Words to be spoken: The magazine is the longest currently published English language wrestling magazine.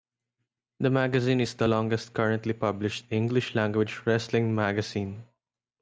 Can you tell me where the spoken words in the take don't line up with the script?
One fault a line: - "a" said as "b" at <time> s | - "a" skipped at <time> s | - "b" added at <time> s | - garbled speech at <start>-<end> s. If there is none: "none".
none